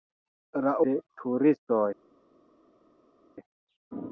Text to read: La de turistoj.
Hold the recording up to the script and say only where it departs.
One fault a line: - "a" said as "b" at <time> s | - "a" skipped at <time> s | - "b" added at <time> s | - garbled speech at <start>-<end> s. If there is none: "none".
none